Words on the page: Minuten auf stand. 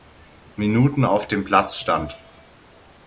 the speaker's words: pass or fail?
fail